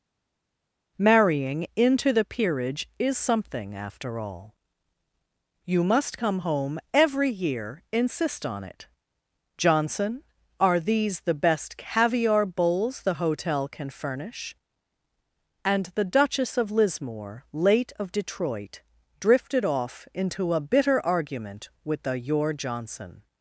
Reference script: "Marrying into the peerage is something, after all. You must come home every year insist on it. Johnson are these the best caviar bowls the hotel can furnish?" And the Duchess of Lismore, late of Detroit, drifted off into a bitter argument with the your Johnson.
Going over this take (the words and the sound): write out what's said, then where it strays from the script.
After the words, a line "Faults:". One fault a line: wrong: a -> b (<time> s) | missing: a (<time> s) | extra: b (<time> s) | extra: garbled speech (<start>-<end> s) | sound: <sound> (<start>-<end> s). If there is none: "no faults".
"Marrying into the peerage is something, after all. You must come home every year insist on it. Johnson are these the best caviar bowls the hotel can furnish?" And the Duchess of Lismore, late of Detroit, drifted off into a bitter argument with the your Johnson.
Faults:
no faults